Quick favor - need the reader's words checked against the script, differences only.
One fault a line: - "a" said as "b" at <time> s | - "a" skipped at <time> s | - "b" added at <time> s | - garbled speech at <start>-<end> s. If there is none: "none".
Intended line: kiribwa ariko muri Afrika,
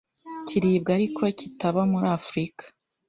- "kitaba" added at 1.4 s